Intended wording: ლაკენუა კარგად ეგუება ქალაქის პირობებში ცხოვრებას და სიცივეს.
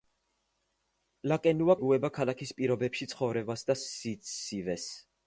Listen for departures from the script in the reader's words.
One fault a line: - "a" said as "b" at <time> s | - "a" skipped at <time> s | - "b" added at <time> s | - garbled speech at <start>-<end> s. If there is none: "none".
- "კარგად" skipped at 1.8 s